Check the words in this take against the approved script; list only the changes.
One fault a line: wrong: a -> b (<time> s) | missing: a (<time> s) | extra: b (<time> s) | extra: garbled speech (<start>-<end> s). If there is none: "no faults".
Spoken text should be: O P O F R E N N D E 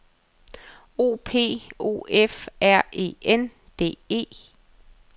missing: N (3.5 s)